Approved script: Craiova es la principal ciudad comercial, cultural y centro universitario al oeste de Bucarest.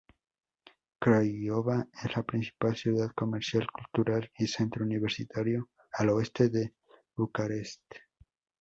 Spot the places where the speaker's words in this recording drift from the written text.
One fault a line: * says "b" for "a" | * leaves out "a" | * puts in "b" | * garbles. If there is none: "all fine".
all fine